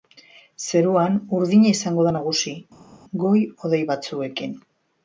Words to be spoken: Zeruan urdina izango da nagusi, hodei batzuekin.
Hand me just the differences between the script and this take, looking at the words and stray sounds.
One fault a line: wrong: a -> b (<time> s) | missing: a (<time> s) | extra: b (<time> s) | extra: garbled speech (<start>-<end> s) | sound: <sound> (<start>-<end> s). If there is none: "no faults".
extra: goi (3.2 s)